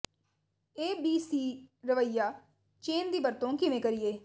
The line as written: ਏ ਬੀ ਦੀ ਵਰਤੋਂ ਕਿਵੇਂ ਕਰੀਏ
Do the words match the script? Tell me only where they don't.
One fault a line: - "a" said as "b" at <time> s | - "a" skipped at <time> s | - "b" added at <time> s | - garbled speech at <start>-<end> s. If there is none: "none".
- "ਸੀ ਰਵੱਈਆ ਚੇਨ" added at 1.2 s